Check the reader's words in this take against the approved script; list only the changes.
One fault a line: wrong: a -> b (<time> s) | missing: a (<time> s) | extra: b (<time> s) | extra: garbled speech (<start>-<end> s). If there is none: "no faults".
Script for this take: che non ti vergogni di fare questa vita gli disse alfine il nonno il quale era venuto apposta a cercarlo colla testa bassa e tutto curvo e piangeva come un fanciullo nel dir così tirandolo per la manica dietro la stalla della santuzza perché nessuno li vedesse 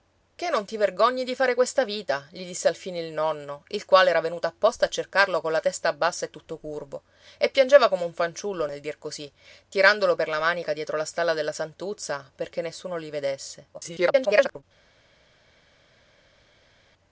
extra: garbled speech (13.7-14.6 s)